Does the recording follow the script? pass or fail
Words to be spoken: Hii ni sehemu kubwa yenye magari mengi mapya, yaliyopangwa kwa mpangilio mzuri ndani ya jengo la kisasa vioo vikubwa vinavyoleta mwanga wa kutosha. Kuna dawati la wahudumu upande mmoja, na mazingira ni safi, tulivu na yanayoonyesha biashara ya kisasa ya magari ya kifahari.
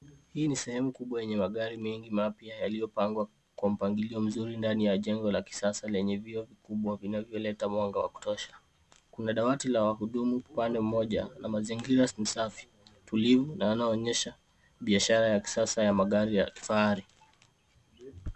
fail